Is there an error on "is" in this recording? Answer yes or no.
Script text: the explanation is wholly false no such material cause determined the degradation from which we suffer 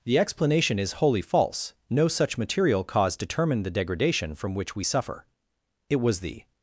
no